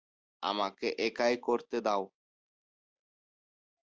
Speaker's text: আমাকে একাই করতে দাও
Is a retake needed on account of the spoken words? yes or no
no